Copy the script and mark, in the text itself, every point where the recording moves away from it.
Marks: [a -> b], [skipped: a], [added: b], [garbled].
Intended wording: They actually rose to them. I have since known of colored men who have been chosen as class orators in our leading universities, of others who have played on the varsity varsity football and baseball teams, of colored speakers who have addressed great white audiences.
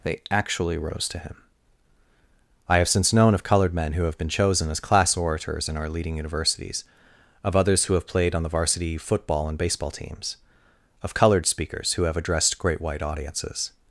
They actually rose to [them. -> him] I have since known of colored men who have been chosen as class orators in our leading universities, of others who have played on the varsity [skipped: varsity] football and baseball teams, of colored speakers who have addressed great white audiences.